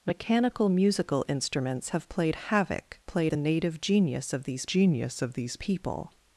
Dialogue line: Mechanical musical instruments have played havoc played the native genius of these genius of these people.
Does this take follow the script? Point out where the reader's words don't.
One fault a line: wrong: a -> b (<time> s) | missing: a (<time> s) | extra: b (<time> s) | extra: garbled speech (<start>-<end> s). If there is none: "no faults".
no faults